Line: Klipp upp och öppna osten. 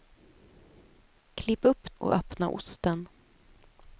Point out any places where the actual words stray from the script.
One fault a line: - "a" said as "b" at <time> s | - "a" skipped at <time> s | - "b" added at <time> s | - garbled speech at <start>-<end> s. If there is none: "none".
none